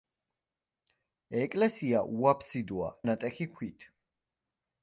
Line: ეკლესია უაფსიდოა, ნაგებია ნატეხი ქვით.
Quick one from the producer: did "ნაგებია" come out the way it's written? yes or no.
no